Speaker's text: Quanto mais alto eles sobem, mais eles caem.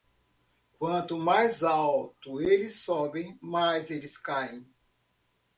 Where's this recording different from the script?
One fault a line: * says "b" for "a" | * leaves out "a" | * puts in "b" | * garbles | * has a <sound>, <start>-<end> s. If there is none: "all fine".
all fine